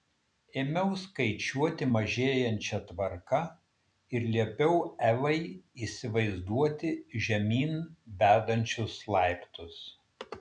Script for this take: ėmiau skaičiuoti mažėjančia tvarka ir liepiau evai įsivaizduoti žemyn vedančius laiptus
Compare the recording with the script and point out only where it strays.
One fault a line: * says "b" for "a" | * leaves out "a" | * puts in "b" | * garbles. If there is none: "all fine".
all fine